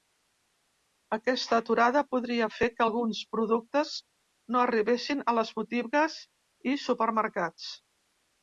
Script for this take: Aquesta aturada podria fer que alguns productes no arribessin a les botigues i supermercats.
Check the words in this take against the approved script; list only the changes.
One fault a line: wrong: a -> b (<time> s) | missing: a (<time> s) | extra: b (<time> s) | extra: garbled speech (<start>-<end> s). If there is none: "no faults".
no faults